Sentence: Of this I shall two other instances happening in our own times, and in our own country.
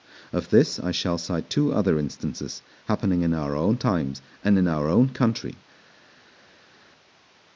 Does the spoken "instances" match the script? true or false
true